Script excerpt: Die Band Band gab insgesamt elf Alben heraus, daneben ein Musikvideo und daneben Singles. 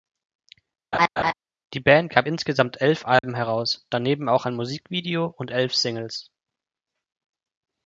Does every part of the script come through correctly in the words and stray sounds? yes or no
no